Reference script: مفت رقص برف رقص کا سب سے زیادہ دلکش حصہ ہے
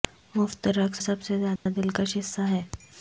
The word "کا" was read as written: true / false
false